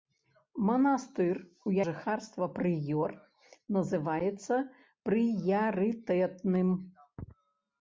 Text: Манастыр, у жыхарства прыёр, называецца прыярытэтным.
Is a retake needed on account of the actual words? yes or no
no